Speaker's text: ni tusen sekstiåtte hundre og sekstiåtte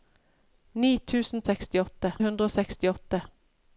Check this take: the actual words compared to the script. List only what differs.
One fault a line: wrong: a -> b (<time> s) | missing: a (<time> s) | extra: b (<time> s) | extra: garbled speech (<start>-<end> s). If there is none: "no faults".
no faults